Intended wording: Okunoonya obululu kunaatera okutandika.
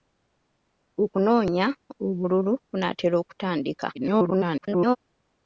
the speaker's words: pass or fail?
fail